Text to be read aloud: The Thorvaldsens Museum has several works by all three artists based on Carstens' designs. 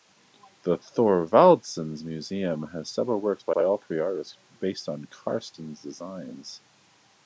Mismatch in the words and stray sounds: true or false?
true